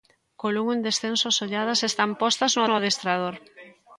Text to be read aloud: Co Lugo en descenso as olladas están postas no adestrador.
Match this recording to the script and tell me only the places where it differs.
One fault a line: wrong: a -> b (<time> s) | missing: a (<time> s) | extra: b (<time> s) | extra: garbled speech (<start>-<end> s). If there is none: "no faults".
extra: no (2.6 s)